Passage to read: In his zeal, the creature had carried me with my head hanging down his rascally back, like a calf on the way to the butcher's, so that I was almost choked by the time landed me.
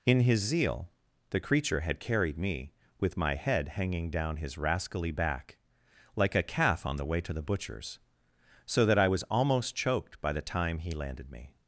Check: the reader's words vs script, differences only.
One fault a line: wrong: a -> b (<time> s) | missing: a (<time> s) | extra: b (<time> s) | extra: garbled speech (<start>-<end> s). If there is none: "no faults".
extra: he (10.8 s)